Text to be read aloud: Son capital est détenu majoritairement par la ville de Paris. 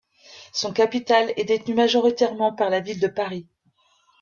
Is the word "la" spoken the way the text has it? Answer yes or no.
yes